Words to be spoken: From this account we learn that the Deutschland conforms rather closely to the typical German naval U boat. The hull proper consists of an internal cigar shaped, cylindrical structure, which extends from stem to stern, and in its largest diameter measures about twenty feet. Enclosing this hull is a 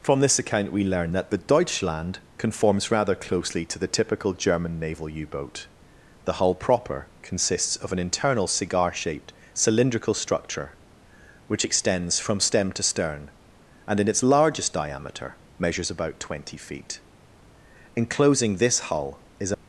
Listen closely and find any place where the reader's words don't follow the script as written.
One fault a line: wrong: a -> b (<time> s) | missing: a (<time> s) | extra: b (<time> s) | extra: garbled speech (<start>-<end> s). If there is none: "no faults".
no faults